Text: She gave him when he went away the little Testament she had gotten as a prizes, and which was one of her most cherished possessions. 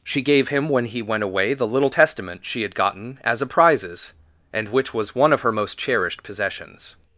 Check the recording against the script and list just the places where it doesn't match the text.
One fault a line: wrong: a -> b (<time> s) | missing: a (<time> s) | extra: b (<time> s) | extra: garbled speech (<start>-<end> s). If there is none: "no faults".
no faults